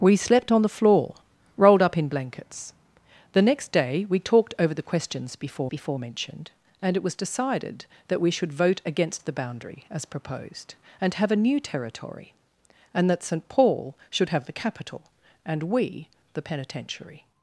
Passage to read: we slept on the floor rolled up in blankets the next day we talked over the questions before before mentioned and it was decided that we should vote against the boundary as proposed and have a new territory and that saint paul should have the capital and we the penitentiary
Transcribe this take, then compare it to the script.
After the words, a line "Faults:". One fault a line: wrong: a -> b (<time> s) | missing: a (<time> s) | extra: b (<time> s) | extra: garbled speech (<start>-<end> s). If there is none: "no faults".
we slept on the floor rolled up in blankets the next day we talked over the questions before before mentioned and it was decided that we should vote against the boundary as proposed and have a new territory and that saint paul should have the capital and we the penitentiary
Faults:
no faults